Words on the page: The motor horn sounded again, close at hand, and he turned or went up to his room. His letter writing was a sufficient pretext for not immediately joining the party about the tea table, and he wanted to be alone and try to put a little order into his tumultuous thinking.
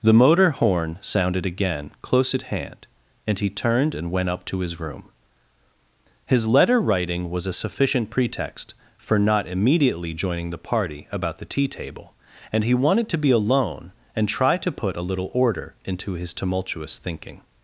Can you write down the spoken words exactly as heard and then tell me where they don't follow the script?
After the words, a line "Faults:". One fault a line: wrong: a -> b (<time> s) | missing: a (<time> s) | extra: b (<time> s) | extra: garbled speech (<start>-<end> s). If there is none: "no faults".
The motor horn sounded again, close at hand, and he turned and went up to his room. His letter writing was a sufficient pretext for not immediately joining the party about the tea table, and he wanted to be alone and try to put a little order into his tumultuous thinking.
Faults:
wrong: or -> and (3.9 s)